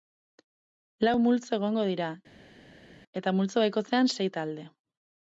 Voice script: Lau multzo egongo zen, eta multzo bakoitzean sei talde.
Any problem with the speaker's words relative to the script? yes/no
yes